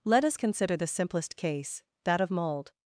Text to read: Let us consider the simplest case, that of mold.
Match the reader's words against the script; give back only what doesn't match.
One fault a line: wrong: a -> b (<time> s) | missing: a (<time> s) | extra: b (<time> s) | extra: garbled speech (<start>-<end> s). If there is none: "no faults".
no faults